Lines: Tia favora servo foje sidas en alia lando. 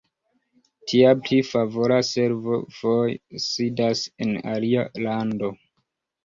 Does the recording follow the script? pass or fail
fail